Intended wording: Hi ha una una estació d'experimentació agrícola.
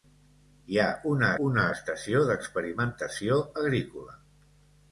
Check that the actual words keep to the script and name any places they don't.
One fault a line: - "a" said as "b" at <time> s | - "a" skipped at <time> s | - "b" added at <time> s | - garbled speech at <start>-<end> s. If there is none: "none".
none